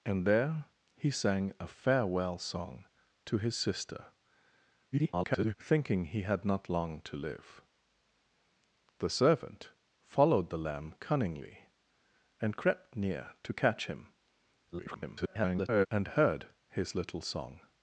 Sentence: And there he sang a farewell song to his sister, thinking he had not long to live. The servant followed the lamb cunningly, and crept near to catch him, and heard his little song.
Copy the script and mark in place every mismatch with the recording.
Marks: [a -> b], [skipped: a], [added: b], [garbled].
And there he sang a farewell song to his sister, [garbled] thinking he had not long to live. The servant followed the lamb cunningly, and crept near to catch him, [garbled] and heard his little song.